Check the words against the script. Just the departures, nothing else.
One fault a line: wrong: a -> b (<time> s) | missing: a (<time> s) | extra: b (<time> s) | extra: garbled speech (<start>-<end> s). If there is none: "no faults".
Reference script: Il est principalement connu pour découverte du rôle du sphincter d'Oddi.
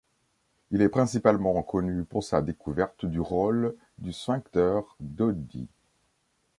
extra: sa (2.2 s)